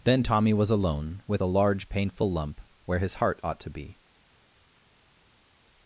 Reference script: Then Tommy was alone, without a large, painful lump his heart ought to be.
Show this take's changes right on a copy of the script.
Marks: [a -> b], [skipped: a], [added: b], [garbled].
Then Tommy was alone, [without -> with] a large, painful lump [added: where] his heart ought to be.